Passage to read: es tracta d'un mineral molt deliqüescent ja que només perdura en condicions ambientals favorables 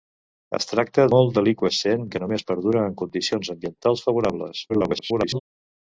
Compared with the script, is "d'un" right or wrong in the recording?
wrong